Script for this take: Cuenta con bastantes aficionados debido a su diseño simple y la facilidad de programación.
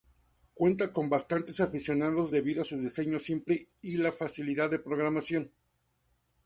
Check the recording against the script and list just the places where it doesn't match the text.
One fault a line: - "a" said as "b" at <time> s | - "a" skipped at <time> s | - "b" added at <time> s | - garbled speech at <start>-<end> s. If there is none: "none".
none